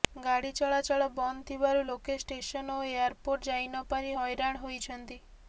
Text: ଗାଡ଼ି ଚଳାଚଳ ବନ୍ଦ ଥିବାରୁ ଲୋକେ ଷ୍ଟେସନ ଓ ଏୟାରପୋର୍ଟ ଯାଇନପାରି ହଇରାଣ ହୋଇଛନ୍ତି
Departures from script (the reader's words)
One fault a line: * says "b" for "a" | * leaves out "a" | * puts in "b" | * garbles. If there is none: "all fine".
all fine